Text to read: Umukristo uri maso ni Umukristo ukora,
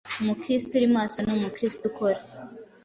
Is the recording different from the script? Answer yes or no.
no